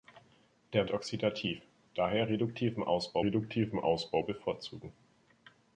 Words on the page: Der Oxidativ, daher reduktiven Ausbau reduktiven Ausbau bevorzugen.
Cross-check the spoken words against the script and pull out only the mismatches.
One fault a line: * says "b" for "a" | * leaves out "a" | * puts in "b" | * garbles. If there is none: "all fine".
all fine